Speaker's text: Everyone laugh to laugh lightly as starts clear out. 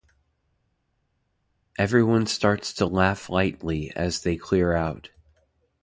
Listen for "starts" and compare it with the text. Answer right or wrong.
wrong